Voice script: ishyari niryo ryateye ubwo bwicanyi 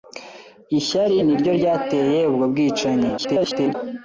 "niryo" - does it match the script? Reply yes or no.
yes